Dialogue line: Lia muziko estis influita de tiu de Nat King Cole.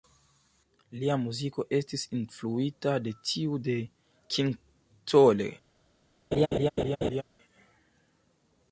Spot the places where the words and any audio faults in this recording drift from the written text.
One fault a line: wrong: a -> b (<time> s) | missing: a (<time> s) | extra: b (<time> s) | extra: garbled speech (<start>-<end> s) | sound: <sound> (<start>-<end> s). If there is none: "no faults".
missing: Nat (3.8 s)
sound: laugh (6.3-7.2 s)